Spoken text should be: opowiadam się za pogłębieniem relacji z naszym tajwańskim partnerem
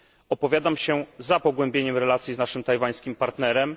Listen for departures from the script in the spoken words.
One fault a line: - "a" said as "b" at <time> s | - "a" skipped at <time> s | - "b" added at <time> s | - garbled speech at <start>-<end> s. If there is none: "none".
none